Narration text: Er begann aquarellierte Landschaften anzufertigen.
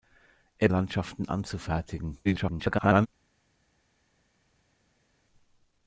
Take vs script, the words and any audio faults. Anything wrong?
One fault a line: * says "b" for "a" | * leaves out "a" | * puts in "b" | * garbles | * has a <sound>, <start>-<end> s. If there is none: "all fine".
* leaves out "begann aquarellierte"
* garbles